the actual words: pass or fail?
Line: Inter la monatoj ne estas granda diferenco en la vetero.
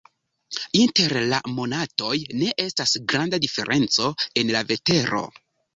pass